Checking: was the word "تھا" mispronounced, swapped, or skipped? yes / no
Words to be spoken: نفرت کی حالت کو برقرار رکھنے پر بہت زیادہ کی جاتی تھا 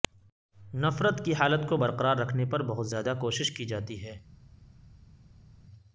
yes